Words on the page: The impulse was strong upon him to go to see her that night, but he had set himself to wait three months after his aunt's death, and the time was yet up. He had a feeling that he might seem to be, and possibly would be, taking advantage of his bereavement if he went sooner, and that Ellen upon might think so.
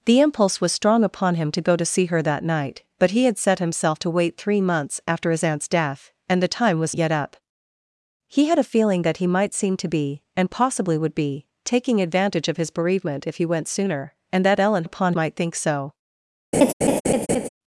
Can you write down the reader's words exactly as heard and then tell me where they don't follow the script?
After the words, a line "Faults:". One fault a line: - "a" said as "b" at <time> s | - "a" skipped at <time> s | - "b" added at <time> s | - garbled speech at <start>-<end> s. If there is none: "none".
The impulse was strong upon him to go to see her that night, but he had set himself to wait three months after his aunt's death, and the time was yet up. He had a feeling that he might seem to be, and possibly would be, taking advantage of his bereavement if he went sooner, and that Ellen upon might think so.
Faults:
none